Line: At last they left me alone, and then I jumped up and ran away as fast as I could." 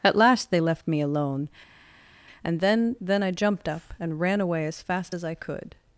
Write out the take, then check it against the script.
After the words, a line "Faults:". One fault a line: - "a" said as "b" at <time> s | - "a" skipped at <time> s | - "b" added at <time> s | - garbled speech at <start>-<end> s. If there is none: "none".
At last they left me alone, and then then I jumped up and ran away as fast as I could."
Faults:
- "then" added at 3.0 s